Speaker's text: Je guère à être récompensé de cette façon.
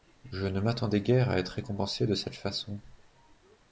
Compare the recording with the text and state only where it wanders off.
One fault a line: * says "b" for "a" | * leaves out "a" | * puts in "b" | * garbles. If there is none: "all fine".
* puts in "ne m'attendais"